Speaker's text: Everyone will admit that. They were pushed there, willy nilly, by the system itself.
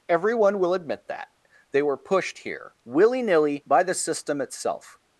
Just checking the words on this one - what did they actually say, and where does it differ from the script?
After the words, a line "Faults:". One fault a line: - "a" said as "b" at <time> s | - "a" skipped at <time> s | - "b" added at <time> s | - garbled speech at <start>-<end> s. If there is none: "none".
Everyone will admit that. They were pushed here, willy nilly, by the system itself.
Faults:
- "there" said as "here" at 2.4 s